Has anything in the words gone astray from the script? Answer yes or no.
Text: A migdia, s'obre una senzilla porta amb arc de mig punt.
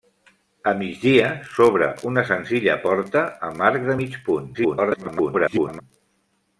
yes